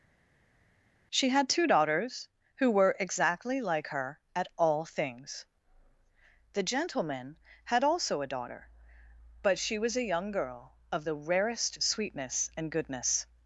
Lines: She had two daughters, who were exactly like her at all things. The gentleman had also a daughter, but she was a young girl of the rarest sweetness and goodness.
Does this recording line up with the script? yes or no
yes